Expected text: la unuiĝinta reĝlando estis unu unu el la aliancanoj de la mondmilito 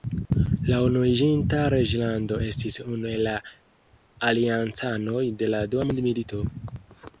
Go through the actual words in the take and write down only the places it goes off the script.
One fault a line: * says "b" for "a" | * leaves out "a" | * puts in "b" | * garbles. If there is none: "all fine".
* leaves out "unu"
* puts in "dua"